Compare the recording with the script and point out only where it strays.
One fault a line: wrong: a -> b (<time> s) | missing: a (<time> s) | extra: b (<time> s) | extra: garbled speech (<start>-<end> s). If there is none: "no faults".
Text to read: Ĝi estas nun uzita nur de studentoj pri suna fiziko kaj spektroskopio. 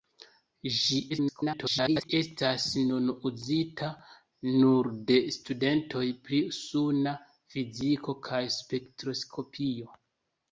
extra: garbled speech (1.1-2.1 s)